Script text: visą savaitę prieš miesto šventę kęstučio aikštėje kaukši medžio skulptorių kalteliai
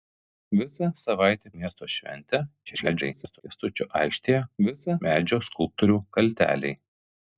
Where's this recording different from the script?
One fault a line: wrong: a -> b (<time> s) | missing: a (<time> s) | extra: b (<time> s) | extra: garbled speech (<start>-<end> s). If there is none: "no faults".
missing: prieš (1.5 s)
extra: garbled speech (2.7-3.4 s)
wrong: kaukši -> visą (4.7 s)